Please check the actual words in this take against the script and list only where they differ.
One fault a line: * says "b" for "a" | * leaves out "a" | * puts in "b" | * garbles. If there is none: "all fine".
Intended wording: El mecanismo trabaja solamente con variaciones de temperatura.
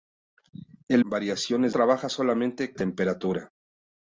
* says "variaciones" for "mecanismo"
* leaves out "con variaciones de"